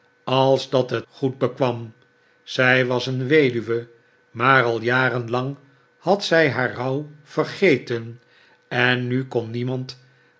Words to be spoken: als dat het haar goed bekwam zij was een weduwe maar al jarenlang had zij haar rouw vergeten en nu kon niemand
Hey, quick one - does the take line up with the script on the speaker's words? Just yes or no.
no